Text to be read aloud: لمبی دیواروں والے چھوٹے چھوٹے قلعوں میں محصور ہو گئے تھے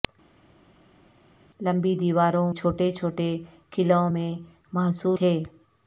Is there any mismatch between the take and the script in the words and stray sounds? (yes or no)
yes